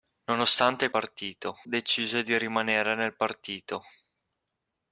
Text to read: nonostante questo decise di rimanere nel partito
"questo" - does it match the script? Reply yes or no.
no